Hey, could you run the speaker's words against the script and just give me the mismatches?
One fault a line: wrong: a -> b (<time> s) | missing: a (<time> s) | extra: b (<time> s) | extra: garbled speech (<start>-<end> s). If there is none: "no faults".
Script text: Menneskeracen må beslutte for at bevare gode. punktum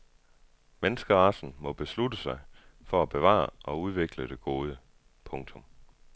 extra: sig (2.2 s)
extra: og udvikle det (3.6 s)